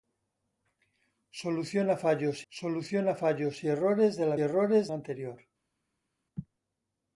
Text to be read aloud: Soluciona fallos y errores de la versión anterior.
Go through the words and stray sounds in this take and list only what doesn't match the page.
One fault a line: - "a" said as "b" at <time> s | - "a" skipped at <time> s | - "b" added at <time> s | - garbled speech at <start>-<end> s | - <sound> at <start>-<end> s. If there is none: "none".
- "soluciona fallos" added at 2.5 s
- "versión" said as "errores" at 4.4 s